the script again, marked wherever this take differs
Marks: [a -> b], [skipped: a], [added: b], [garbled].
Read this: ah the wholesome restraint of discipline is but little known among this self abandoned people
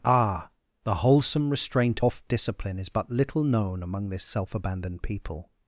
ah the wholesome restraint [of -> off] discipline is but little known among this self abandoned people